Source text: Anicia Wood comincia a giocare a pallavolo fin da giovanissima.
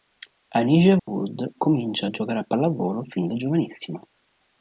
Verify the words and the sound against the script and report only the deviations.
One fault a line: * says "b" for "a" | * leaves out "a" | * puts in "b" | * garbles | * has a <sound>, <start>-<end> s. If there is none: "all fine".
* has a dropout, 1.0-1.1 s